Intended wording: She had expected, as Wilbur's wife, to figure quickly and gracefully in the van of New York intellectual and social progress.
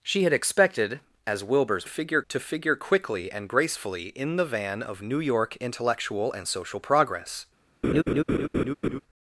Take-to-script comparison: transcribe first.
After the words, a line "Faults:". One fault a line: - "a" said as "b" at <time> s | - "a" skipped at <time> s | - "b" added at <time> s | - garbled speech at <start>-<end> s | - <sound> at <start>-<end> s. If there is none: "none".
She had expected, as Wilbur's figure, to figure quickly and gracefully in the van of New York intellectual and social progress.
Faults:
- "wife" said as "figure" at 1.8 s
- laugh at 7.8-9.0 s